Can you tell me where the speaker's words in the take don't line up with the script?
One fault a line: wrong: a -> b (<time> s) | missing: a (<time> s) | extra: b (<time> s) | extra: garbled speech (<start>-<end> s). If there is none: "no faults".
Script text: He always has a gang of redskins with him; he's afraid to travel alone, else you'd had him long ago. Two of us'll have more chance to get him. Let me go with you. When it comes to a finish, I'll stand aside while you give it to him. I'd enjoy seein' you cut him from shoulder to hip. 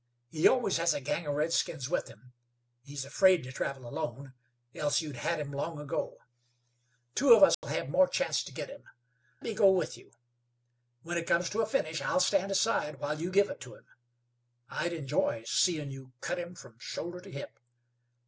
missing: Let (8.8 s)